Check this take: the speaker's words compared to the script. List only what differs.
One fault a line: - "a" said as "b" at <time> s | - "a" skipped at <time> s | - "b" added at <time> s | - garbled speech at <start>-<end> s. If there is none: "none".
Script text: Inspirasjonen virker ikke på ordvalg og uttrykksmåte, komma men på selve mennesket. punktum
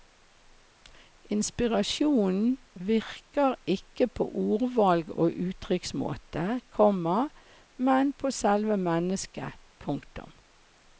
none